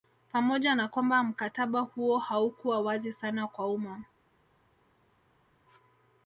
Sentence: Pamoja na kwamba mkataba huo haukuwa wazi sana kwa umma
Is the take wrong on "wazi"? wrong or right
right